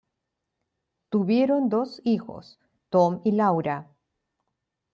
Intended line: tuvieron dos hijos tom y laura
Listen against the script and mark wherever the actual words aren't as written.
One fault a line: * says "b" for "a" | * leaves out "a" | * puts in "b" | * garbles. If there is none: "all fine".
all fine